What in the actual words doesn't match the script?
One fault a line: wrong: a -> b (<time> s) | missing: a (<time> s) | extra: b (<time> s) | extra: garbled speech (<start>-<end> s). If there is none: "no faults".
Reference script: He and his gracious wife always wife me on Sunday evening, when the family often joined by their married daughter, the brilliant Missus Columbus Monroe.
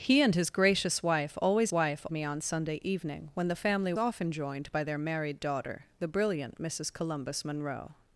no faults